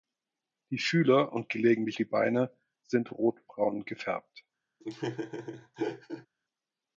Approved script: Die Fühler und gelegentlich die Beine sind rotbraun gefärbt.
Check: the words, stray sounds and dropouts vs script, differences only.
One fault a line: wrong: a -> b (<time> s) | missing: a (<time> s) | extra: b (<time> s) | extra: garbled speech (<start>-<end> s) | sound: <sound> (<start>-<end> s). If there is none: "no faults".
sound: laugh (4.8-6.3 s)